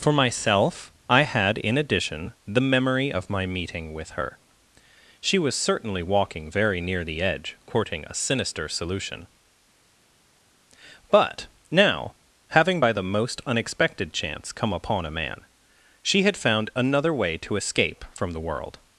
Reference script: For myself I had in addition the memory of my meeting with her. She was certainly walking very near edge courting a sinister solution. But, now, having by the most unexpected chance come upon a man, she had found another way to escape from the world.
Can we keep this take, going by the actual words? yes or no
no